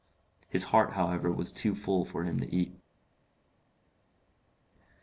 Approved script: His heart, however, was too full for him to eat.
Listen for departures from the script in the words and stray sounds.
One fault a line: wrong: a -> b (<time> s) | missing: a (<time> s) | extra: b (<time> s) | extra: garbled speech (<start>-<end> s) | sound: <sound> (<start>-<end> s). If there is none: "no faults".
no faults